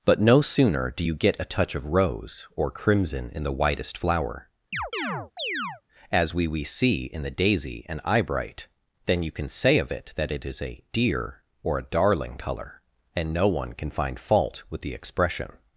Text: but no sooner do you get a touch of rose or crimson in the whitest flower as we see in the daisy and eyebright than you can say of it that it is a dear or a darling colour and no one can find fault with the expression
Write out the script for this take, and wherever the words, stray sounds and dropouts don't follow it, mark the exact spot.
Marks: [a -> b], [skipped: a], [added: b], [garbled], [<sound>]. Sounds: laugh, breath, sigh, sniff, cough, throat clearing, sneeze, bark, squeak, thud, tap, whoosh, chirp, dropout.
but no sooner do you get a touch of rose or crimson in the whitest flower [chirp] as we [added: we] see in the daisy and eyebright than you can say of it that it is a dear or a darling colour and no one can find fault with the expression